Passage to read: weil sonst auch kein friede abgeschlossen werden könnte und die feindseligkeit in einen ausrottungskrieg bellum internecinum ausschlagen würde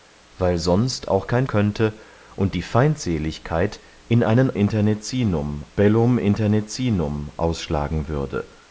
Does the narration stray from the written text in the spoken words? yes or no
yes